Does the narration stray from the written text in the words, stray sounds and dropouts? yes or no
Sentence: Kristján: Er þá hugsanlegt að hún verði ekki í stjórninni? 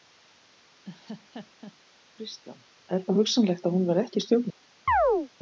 yes